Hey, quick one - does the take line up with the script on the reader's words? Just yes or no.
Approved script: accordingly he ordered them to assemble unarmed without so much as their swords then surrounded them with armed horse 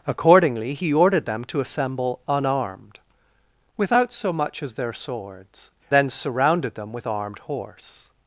yes